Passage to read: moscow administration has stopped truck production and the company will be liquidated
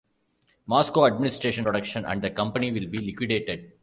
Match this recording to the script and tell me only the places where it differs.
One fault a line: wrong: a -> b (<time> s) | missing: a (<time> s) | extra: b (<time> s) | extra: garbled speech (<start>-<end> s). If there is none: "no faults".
missing: has stopped truck (1.6 s)